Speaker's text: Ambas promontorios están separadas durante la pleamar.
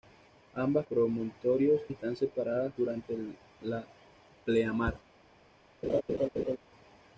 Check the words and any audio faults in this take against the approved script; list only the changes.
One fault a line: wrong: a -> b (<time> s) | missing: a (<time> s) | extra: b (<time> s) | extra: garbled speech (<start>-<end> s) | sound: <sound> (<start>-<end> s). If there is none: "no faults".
sound: laugh (5.8-6.6 s)